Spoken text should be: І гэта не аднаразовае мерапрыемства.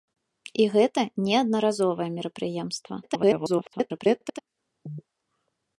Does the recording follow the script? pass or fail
fail